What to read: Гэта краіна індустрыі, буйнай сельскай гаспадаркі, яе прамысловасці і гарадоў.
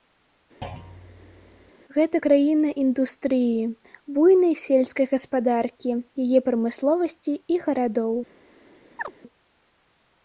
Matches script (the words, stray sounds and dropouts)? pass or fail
fail